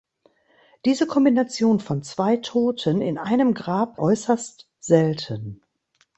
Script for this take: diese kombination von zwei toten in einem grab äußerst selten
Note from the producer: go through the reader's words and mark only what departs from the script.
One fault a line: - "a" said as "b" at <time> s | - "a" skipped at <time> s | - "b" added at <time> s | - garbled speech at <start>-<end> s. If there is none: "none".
none